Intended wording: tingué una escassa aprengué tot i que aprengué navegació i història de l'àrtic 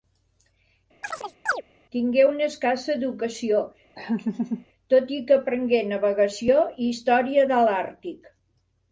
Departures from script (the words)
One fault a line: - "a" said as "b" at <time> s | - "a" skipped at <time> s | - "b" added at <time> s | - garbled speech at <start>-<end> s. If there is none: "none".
- "aprengué" said as "educació" at 2.9 s